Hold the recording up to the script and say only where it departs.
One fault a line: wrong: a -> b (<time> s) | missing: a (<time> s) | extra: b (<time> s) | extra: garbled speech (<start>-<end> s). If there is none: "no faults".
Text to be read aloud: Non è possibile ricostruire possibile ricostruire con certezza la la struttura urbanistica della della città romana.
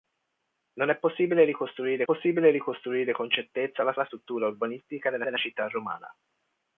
no faults